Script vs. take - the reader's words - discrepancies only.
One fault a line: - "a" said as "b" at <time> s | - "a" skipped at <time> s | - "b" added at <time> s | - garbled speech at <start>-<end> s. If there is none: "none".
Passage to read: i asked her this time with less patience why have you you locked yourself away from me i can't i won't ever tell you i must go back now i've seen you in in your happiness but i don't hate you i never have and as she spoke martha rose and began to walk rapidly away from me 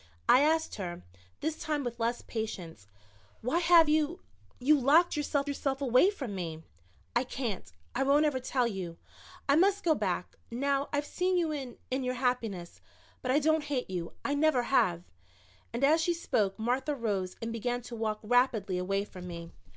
- "yourself" added at 5.5 s